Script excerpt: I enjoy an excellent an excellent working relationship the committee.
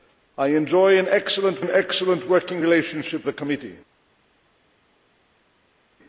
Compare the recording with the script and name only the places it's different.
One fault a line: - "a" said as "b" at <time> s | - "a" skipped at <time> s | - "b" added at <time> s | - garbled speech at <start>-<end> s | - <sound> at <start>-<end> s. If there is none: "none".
none